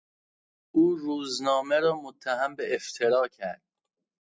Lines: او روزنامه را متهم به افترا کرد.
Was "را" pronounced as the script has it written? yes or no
yes